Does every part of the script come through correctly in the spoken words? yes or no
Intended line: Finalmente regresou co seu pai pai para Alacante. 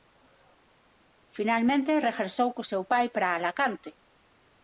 no